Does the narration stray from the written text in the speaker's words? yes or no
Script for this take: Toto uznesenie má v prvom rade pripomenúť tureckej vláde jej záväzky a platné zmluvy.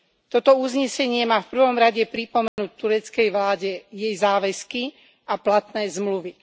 no